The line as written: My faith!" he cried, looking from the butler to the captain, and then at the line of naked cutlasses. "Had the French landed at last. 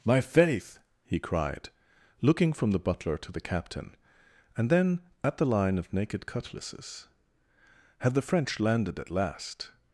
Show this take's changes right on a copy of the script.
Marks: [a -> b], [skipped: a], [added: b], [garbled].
My faith!" he cried, looking from the butler to the captain, and then at the line of naked cutlasses. "Had the French landed at last.